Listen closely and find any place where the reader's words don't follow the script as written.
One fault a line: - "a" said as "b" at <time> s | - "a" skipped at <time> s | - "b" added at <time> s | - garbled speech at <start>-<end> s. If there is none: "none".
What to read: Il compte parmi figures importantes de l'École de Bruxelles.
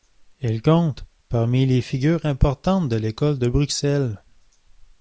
- "les" added at 1.7 s